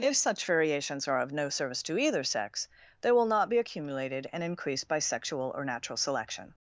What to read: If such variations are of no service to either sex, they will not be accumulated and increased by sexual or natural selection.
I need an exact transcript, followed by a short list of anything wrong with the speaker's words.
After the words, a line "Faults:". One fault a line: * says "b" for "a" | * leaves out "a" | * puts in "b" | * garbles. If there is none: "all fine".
If such variations are of no service to either sex, they will not be accumulated and increased by sexual or natural selection.
Faults:
all fine